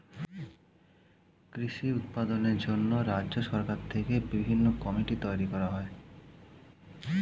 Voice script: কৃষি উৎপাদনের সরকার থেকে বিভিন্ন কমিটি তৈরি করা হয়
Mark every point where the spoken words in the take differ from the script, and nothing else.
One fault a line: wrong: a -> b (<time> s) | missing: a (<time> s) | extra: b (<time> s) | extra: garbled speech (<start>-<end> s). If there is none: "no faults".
extra: জন্য রাজ্য (2.6 s)